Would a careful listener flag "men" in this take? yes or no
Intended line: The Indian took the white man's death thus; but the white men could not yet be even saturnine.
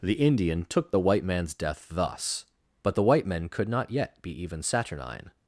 no